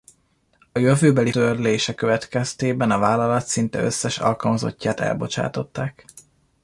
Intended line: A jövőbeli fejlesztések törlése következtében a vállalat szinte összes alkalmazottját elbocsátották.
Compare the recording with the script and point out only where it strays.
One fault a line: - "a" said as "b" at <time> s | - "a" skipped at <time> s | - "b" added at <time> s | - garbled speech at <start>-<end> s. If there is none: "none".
- "fejlesztések" skipped at 1.3 s